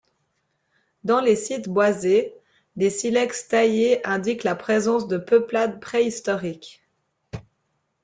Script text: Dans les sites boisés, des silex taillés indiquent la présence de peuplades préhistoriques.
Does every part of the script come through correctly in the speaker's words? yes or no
yes